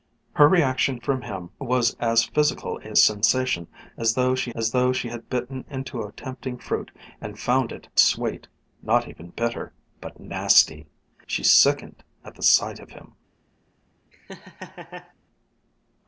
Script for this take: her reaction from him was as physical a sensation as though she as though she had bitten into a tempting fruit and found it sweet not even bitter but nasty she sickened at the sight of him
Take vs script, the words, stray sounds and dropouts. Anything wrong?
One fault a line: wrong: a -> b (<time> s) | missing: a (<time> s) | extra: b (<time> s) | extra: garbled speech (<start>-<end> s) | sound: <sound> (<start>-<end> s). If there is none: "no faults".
sound: laugh (14.1-15.1 s)